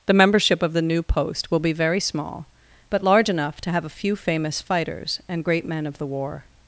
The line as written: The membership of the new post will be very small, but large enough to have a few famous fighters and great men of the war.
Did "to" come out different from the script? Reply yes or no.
no